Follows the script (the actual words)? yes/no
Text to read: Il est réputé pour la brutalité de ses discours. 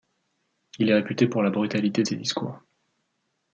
yes